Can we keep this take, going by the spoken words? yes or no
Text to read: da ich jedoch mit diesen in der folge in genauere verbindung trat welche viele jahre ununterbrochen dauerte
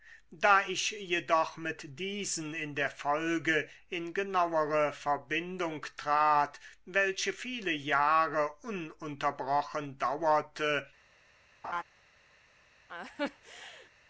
yes